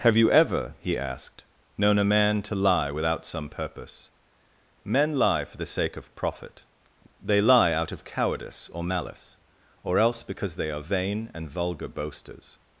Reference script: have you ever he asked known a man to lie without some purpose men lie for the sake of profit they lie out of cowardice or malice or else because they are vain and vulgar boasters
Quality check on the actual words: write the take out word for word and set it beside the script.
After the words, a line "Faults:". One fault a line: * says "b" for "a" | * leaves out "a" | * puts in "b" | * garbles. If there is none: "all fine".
have you ever he asked known a man to lie without some purpose men lie for the sake of profit they lie out of cowardice or malice or else because they are vain and vulgar boasters
Faults:
all fine